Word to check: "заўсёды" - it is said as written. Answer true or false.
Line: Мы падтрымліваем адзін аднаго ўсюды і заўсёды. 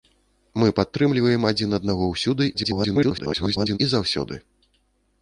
true